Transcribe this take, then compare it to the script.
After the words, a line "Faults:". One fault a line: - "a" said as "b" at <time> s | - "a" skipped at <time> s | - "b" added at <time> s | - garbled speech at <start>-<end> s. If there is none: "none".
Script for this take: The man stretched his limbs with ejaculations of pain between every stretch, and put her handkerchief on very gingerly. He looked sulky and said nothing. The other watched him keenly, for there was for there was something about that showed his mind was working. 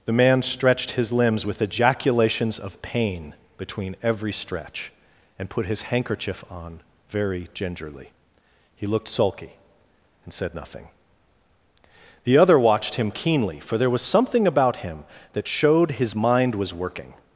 The man stretched his limbs with ejaculations of pain between every stretch, and put his handkerchief on very gingerly. He looked sulky and said nothing. The other watched him keenly, for there was something about him that showed his mind was working.
Faults:
- "her" said as "his" at 5.7 s
- "for there was" skipped at 14.0 s
- "him" added at 14.8 s